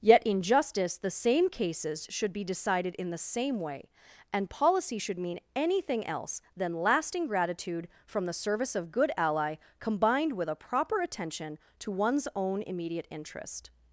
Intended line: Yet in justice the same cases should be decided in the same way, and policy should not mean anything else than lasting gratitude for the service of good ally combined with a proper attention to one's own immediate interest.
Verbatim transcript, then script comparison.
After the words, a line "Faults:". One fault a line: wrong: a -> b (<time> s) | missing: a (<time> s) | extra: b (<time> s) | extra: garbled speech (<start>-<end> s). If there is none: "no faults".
Yet in justice the same cases should be decided in the same way, and policy should mean anything else than lasting gratitude from the service of good ally combined with a proper attention to one's own immediate interest.
Faults:
missing: not (5.2 s)
wrong: for -> from (8.1 s)